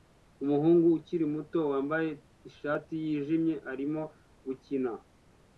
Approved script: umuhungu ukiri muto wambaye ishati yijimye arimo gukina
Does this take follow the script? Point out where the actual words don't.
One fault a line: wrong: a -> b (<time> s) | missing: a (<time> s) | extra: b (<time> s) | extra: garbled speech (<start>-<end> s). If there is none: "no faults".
no faults